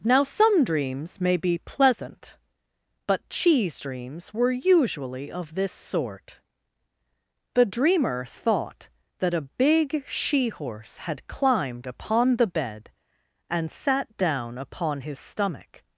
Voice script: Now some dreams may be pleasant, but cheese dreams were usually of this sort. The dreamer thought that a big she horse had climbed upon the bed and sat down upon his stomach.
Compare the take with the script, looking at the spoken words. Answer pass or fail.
pass